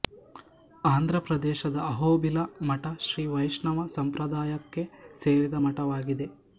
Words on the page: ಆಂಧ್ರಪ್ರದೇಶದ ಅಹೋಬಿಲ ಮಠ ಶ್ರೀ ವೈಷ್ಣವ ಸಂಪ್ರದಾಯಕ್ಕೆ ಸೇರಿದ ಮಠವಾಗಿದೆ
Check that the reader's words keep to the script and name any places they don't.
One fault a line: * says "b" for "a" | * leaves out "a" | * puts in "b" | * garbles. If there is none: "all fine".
all fine